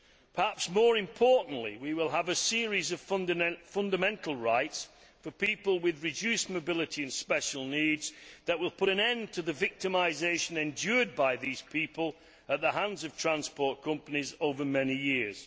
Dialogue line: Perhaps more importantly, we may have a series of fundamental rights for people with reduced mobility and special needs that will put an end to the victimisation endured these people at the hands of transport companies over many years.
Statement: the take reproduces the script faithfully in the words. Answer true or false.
false